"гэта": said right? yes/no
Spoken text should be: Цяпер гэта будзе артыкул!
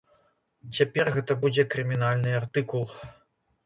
yes